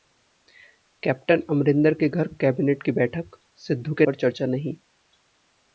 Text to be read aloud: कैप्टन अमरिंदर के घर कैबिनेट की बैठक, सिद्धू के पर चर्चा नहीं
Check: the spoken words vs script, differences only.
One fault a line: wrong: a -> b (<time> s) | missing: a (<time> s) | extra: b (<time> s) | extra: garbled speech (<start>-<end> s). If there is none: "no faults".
no faults